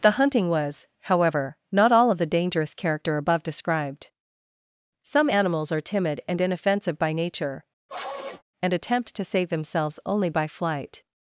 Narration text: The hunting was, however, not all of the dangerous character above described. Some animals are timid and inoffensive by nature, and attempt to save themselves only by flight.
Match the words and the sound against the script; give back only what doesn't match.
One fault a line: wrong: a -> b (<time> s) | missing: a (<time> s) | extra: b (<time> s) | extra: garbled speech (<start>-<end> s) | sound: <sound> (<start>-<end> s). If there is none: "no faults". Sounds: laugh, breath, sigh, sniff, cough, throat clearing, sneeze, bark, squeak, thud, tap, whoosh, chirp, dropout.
sound: sniff (7.9-8.4 s)